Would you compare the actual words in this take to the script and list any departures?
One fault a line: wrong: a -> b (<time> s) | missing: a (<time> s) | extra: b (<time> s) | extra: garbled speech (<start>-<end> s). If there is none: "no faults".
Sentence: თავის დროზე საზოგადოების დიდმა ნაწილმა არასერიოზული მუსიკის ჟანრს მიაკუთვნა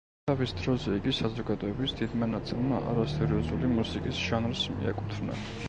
extra: იგი (1.0 s)